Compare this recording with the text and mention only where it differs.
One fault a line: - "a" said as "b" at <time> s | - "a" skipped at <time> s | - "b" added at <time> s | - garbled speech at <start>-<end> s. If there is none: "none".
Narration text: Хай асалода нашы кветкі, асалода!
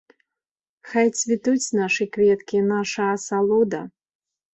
- "асалода" said as "цвітуць" at 1.2 s
- "наша" added at 2.7 s